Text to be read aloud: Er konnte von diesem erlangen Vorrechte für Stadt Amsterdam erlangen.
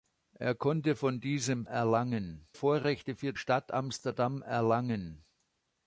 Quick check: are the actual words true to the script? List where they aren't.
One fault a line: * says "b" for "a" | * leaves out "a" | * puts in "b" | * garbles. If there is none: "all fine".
all fine